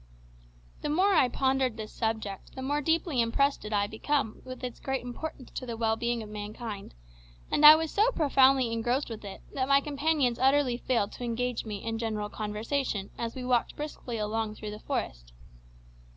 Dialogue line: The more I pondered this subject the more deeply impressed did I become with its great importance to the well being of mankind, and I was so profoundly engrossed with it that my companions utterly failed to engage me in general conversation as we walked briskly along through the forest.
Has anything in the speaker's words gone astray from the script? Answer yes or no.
no